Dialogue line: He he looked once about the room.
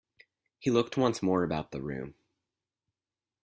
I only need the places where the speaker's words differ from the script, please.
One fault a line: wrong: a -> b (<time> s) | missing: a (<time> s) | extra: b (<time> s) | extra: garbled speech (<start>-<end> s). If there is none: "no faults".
missing: he (0.7 s)
extra: more (1.2 s)